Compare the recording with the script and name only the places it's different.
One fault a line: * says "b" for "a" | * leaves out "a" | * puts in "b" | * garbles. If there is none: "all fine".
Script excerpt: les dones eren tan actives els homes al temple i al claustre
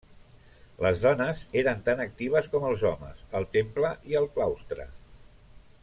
* puts in "com"